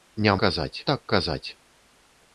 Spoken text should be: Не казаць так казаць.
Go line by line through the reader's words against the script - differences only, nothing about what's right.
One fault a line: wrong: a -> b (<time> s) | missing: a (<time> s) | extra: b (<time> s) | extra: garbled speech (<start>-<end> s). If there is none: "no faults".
no faults